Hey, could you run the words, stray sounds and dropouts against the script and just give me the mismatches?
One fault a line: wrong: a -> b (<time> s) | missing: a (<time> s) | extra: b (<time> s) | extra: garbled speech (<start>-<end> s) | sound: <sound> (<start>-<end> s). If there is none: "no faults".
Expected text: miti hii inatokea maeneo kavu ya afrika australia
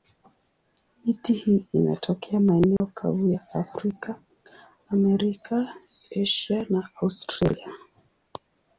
sound: dropout (2.8-2.8 s)
extra: amerika asia na (4.9 s)